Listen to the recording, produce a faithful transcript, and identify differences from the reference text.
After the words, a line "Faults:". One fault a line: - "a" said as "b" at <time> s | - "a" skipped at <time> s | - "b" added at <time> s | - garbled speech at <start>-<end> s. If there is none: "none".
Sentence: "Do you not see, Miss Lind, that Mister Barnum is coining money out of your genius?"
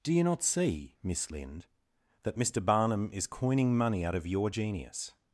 "Do you not see, Miss Lind, that Mister Barnum is coining money out of your genius?"
Faults:
none